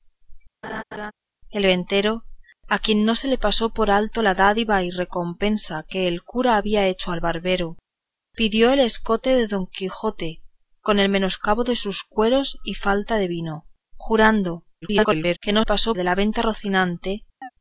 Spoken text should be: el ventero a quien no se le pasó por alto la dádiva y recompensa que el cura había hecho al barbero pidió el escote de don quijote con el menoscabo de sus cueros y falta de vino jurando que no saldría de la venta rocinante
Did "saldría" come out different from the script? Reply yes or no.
yes